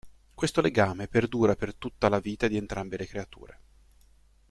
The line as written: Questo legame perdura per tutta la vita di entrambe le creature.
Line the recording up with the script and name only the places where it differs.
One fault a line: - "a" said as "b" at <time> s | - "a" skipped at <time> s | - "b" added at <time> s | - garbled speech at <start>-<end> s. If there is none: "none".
none